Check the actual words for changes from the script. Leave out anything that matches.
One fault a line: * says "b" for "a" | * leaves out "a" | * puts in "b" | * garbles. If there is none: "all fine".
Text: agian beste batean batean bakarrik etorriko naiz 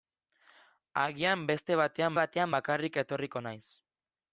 all fine